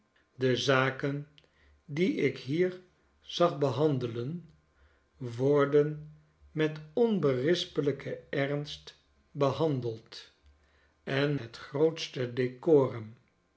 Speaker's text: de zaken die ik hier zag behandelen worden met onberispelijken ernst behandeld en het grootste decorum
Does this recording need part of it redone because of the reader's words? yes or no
no